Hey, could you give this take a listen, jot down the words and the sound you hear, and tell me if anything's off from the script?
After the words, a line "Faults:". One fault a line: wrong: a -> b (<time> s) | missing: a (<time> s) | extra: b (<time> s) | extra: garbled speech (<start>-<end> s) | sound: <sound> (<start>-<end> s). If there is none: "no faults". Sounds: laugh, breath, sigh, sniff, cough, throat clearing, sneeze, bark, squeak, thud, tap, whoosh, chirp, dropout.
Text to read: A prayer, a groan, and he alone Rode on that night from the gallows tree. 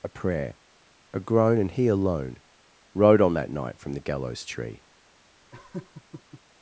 A prayer, a groan, and he alone Rode on that night from the gallows tree.
Faults:
sound: laugh (5.5-6.4 s)